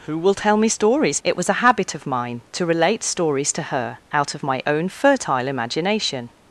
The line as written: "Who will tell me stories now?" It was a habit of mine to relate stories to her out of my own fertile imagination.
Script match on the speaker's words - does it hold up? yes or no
no